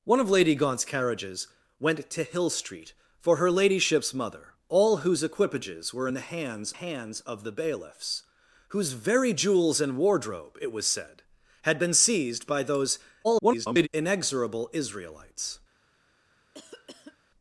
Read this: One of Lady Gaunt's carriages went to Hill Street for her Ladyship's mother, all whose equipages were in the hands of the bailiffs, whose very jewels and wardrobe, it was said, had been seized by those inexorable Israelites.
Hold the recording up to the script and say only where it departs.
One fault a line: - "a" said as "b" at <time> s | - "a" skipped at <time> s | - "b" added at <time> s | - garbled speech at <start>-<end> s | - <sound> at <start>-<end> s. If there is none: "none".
- "hands" added at 6.7 s
- garbled speech at 13.2-13.9 s
- cough at 16.5-17.2 s